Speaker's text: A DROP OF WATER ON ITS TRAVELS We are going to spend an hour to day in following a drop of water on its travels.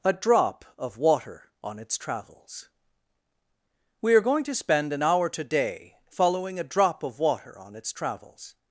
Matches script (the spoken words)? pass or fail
fail